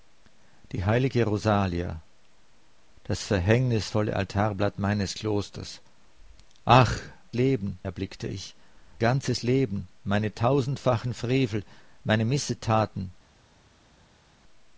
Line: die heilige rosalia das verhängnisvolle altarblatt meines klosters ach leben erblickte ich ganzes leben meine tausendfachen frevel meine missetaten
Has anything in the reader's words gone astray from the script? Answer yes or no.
no